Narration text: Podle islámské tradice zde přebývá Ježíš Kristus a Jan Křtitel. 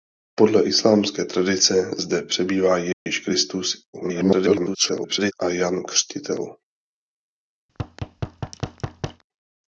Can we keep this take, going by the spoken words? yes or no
no